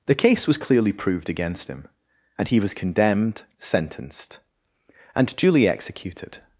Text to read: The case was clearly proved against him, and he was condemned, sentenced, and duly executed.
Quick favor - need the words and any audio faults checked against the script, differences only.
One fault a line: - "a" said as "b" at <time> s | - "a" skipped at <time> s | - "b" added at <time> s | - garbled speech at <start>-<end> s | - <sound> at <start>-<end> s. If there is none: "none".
none